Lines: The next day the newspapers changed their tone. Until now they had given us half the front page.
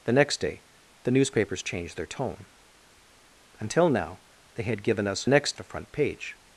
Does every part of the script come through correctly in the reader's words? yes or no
no